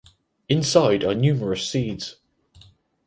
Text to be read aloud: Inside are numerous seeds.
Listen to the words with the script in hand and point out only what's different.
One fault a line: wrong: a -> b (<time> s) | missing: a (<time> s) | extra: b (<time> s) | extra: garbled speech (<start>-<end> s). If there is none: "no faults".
no faults